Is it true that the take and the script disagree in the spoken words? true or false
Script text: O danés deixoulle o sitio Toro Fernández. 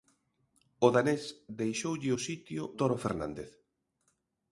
false